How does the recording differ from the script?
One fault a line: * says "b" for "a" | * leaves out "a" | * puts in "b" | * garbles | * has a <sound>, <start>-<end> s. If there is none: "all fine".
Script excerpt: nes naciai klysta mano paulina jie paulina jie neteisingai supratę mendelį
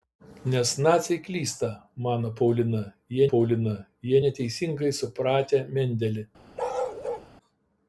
* has a bark, 6.6-7.3 s